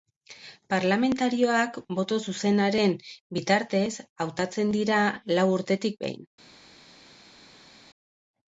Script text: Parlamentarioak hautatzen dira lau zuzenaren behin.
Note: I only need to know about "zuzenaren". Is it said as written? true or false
false